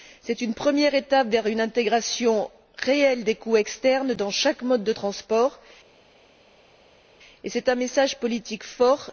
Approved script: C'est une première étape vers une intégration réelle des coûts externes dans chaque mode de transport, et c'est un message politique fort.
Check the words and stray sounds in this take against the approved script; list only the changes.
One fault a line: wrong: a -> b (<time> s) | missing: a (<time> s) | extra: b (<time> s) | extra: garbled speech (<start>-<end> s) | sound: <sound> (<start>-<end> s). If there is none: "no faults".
no faults